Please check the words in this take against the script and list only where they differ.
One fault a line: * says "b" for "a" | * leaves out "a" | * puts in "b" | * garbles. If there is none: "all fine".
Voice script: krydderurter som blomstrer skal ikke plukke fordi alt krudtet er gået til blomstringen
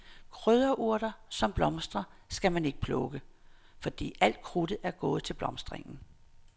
* puts in "man"